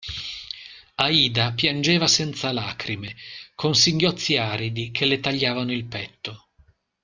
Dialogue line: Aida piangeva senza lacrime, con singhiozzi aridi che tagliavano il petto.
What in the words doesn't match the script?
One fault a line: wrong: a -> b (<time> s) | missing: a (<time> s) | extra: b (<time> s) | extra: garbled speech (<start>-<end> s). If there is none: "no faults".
extra: le (5.0 s)